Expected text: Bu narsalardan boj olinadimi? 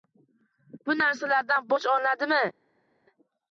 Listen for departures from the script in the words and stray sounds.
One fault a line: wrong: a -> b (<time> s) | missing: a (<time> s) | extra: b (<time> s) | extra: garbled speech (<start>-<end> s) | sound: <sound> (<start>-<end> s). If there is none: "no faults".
no faults